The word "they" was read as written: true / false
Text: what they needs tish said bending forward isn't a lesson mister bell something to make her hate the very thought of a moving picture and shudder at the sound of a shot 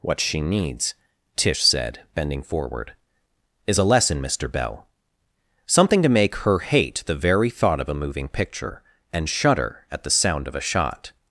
false